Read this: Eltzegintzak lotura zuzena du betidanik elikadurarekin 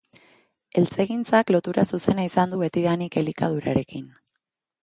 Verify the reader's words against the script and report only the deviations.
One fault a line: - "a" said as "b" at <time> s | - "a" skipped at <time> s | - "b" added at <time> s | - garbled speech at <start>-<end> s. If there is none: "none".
- "izan" added at 2.3 s